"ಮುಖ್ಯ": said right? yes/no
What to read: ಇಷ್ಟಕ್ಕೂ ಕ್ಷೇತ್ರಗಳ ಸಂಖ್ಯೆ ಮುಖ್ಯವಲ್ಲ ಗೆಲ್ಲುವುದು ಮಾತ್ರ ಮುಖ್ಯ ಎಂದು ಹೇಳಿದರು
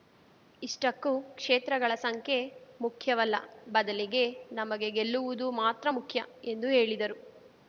yes